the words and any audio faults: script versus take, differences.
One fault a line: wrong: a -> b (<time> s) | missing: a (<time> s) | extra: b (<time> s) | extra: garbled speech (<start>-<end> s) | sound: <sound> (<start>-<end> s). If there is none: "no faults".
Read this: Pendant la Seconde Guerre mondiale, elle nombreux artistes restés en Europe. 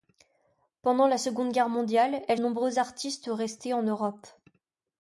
no faults